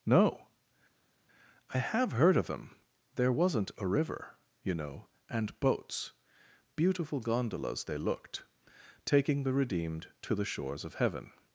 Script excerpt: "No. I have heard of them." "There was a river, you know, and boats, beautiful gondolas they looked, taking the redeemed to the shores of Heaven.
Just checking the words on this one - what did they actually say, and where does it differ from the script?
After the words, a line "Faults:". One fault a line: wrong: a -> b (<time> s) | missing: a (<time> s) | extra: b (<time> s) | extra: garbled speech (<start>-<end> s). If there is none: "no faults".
"No. I have heard of them." "There wasn't a river, you know, and boats, beautiful gondolas they looked, taking the redeemed to the shores of Heaven.
Faults:
wrong: was -> wasn't (3.3 s)